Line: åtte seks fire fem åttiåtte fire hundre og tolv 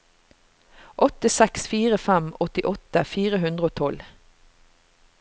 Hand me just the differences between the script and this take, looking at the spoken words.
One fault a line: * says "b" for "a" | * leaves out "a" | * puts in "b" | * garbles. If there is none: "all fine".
all fine